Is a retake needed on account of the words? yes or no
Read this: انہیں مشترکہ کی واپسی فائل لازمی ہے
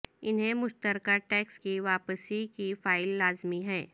yes